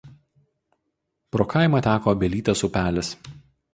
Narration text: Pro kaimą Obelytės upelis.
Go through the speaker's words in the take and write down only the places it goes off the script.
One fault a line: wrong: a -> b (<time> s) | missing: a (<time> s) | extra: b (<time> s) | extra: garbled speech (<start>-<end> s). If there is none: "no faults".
extra: teka (1.9 s)